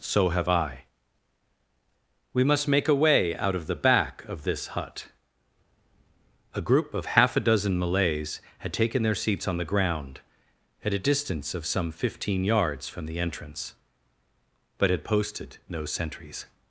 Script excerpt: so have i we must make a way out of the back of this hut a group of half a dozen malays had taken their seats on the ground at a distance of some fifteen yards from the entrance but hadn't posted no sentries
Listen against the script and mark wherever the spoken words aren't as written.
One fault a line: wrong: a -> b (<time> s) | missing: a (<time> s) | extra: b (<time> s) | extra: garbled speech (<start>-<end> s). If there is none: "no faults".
wrong: hadn't -> had (14.9 s)